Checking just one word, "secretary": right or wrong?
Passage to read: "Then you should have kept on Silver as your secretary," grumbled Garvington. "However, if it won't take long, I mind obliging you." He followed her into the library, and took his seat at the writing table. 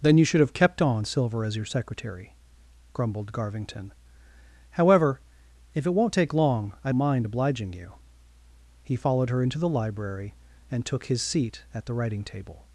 right